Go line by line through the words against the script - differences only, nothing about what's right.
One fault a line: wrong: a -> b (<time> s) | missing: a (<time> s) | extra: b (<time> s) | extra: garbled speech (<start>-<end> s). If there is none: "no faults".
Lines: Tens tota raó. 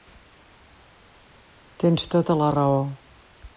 extra: la (2.4 s)